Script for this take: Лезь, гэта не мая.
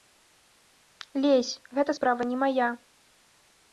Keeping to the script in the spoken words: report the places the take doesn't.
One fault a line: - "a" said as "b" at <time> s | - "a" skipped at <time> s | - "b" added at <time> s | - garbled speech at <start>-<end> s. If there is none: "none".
- "справа" added at 1.9 s